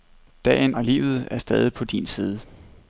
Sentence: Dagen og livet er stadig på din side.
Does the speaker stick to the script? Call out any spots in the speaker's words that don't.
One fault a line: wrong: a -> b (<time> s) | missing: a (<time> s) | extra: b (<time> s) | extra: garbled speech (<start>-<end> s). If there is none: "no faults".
no faults